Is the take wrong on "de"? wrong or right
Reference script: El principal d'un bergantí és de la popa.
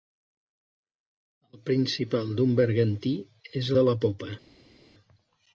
right